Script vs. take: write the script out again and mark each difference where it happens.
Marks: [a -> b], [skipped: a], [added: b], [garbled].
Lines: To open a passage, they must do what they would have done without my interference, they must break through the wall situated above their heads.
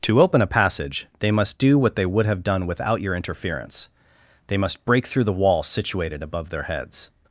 To open a passage, they must do what they would have done without [my -> your] interference, they must break through the wall situated above their heads.